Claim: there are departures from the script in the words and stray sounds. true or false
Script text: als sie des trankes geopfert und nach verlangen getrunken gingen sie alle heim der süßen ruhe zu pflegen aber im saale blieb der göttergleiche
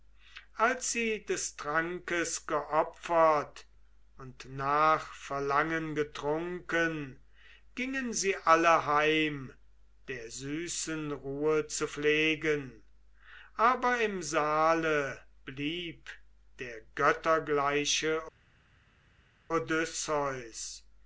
false